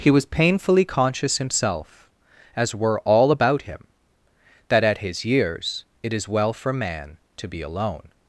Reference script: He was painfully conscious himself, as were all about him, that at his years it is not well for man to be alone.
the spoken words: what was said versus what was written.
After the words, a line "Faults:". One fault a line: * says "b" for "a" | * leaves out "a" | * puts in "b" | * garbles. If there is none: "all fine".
He was painfully conscious himself, as were all about him, that at his years it is well for man to be alone.
Faults:
* leaves out "not"